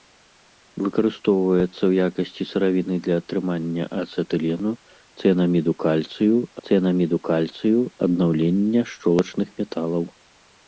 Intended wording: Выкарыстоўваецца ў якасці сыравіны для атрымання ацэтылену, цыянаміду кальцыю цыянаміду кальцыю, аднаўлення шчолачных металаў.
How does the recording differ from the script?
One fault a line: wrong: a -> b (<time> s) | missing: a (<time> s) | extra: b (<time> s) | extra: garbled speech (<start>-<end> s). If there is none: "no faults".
no faults